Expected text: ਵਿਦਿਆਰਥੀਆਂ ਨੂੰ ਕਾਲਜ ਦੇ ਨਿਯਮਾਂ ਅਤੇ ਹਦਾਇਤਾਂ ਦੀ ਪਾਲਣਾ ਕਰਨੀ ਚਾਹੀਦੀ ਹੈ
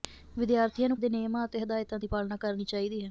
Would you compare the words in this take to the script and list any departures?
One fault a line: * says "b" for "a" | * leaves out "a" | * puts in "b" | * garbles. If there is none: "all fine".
* leaves out "ਕਾਲਜ"